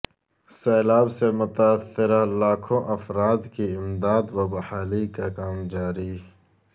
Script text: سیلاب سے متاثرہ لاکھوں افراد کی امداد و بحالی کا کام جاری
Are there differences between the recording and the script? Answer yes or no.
no